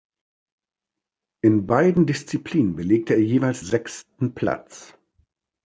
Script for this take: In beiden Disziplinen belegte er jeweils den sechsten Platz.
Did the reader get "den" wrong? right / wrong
wrong